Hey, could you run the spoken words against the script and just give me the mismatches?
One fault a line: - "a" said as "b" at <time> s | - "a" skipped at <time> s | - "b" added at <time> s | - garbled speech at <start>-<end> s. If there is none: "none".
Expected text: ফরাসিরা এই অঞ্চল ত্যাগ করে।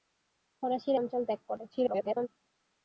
- "এই" skipped at 1.0 s
- garbled speech at 1.7-2.3 s